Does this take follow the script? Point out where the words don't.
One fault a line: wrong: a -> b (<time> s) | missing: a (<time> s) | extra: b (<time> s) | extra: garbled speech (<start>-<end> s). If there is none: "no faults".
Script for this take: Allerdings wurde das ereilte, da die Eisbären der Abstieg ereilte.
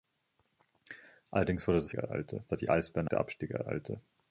no faults